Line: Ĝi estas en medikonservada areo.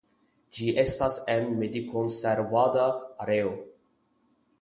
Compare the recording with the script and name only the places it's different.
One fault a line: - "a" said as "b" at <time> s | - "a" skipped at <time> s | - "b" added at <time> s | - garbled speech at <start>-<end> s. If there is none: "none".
none